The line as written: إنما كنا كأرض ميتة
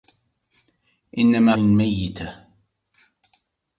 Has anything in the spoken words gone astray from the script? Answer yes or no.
yes